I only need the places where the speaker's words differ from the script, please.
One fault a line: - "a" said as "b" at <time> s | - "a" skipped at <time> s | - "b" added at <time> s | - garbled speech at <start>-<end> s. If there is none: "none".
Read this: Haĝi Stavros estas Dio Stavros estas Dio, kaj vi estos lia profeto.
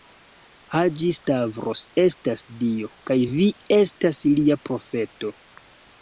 - "Stavros estas Dio" skipped at 2.9 s
- "estos" said as "estas" at 3.8 s